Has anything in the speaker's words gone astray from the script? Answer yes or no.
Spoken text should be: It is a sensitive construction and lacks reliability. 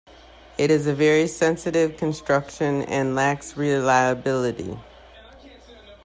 yes